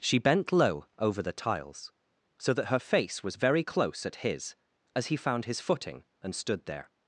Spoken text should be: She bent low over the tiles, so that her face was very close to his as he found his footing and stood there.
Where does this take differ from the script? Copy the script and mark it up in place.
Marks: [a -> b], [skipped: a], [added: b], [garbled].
She bent low over the tiles, so that her face was very close [to -> at] his as he found his footing and stood there.